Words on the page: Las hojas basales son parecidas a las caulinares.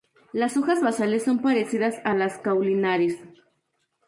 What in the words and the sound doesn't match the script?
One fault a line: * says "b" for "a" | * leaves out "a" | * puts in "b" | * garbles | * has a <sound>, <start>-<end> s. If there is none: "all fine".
all fine